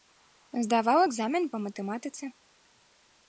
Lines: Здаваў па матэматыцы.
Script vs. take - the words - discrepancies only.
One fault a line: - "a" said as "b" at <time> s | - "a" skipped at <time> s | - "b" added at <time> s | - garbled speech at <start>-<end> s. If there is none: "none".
- "экзамен" added at 1.1 s